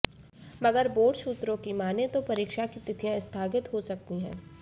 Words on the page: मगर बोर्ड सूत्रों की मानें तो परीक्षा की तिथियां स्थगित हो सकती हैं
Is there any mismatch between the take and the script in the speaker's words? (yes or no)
no